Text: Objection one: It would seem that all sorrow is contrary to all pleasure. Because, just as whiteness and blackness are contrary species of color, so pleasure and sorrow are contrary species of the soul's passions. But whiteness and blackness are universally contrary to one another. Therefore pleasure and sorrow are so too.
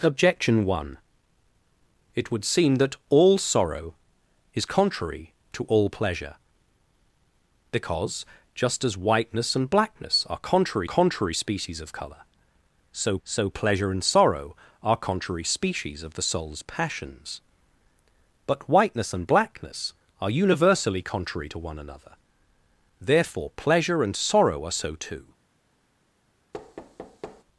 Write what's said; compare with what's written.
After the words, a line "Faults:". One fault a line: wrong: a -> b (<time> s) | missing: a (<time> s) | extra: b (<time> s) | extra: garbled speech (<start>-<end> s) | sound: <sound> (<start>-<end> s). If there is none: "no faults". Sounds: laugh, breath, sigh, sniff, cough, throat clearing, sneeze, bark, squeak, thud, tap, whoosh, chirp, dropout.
Objection one: It would seem that all sorrow is contrary to all pleasure. Because, just as whiteness and blackness are contrary contrary species of color, so so pleasure and sorrow are contrary species of the soul's passions. But whiteness and blackness are universally contrary to one another. Therefore pleasure and sorrow are so too.
Faults:
extra: contrary (10.8 s)
extra: so (13.2 s)
sound: thud (26.5-27.4 s)